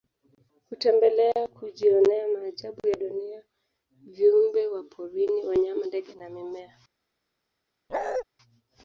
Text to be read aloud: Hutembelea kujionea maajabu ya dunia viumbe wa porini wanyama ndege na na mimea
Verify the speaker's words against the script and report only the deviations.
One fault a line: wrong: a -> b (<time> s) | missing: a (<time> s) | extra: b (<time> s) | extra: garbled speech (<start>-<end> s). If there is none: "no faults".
missing: na (6.3 s)